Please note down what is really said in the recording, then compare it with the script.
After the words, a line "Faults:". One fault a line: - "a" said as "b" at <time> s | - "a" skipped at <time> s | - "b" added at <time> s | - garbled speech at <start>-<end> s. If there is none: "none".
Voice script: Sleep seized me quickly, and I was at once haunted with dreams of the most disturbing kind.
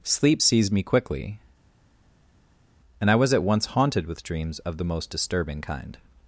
Sleep seized me quickly, and I was at once haunted with dreams of the most disturbing kind.
Faults:
none